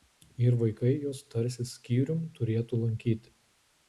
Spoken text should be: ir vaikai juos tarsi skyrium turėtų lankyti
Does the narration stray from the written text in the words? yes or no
no